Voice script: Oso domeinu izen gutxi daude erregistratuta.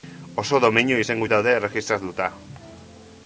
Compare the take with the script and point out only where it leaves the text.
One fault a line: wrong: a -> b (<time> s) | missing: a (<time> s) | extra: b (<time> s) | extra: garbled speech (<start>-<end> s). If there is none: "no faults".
missing: gutxi (1.2 s)